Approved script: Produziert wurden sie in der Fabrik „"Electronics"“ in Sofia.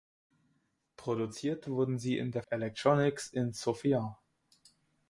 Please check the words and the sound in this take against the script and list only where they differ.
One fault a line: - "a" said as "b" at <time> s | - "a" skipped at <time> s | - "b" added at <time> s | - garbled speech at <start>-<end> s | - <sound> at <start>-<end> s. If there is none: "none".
- "Fabrik" skipped at 2.4 s